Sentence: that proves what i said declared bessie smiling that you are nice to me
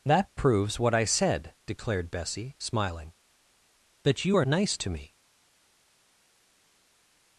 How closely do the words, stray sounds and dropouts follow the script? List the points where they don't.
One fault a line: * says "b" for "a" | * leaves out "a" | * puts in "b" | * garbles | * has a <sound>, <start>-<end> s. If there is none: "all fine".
all fine